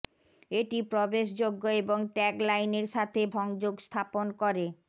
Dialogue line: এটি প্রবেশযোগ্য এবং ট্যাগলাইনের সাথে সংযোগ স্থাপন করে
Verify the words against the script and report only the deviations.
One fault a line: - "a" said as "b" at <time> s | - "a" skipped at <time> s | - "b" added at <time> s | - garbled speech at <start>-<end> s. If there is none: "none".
none